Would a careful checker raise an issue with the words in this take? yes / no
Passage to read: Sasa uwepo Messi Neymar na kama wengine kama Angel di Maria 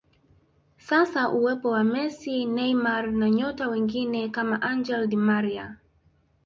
yes